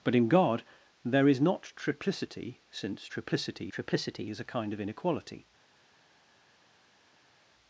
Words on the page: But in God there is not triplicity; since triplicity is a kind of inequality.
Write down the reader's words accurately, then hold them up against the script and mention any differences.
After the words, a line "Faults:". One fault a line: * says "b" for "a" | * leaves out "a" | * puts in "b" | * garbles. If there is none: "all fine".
But in God there is not triplicity; since triplicity triplicity is a kind of inequality.
Faults:
* puts in "triplicity"